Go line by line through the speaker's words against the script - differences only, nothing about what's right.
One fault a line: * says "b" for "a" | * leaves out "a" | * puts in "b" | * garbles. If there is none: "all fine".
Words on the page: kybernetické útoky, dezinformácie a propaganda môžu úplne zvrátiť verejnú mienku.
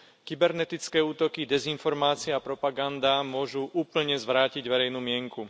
all fine